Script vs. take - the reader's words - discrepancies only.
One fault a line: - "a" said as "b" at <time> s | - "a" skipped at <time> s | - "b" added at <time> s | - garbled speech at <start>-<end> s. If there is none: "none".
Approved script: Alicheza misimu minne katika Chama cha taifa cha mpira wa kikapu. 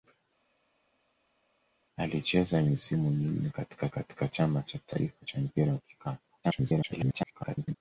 - "katika" added at 3.9 s
- garbled speech at 6.4-7.7 s